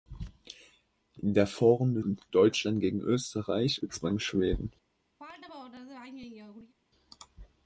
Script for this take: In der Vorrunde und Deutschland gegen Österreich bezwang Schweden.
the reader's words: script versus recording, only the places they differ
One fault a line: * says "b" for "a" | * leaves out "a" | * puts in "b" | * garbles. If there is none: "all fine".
all fine